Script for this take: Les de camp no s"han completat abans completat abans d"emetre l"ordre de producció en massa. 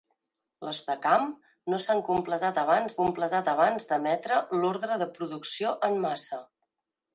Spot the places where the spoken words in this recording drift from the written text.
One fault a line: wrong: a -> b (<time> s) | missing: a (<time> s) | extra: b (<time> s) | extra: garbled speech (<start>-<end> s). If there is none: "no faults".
no faults